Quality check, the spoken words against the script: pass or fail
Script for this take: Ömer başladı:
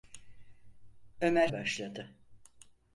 pass